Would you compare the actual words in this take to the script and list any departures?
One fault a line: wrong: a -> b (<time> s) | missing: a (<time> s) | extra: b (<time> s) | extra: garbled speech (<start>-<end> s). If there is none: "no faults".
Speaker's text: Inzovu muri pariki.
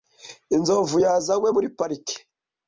extra: yazanywe (1.0 s)